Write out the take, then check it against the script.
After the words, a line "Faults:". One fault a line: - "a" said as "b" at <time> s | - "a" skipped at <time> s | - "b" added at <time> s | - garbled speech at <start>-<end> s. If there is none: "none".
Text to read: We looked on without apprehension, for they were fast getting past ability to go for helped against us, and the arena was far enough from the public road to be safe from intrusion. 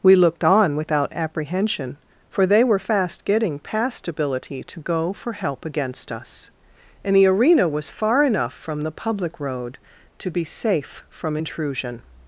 We looked on without apprehension, for they were fast getting past ability to go for help against us, and the arena was far enough from the public road to be safe from intrusion.
Faults:
- "helped" said as "help" at 5.3 s